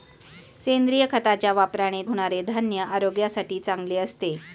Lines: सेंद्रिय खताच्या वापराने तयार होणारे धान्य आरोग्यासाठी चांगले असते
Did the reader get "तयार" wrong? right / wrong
wrong